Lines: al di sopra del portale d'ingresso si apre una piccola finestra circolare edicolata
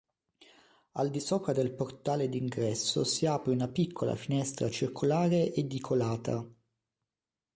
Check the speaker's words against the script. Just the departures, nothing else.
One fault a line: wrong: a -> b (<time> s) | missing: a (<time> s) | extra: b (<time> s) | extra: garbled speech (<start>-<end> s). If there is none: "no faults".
no faults